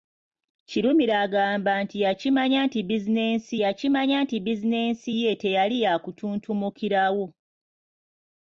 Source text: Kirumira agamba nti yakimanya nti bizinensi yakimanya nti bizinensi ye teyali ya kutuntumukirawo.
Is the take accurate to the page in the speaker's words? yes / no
yes